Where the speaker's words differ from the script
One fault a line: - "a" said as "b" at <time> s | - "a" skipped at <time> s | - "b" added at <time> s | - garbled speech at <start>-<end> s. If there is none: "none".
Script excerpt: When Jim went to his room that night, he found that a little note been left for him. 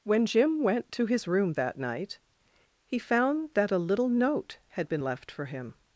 - "had" added at 4.7 s